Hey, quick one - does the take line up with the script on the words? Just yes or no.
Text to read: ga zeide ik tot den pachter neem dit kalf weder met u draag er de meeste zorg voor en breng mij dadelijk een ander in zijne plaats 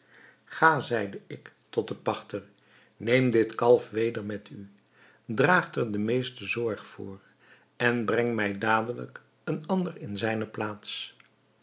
yes